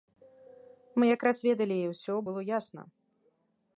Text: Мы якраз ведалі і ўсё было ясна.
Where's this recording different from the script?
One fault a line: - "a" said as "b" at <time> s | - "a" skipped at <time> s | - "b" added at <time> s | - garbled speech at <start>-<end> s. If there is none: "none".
none